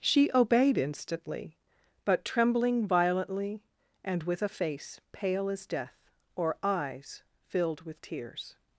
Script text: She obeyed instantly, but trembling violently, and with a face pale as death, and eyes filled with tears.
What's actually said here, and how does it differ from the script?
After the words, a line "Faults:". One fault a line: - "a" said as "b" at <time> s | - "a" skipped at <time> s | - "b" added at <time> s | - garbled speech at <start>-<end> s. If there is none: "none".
She obeyed instantly, but trembling violently, and with a face pale as death, or eyes filled with tears.
Faults:
- "and" said as "or" at 6.4 s